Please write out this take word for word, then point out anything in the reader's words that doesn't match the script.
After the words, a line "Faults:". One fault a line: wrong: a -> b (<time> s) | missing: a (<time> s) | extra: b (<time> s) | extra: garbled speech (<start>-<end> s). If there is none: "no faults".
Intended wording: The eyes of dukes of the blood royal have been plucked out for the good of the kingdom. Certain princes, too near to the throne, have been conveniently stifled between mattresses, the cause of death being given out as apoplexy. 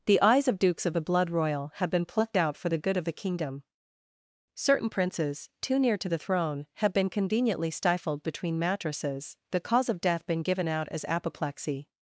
The eyes of dukes of the blood royal have been plucked out for the good of the kingdom. Certain princes, too near to the throne, have been conveniently stifled between mattresses, the cause of death been given out as apoplexy.
Faults:
wrong: being -> been (10.3 s)